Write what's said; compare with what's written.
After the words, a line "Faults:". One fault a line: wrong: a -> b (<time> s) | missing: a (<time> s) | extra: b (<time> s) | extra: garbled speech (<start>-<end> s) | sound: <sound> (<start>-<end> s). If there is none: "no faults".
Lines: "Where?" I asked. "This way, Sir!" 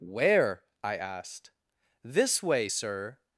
"Where?" I asked. "This way, Sir!"
Faults:
no faults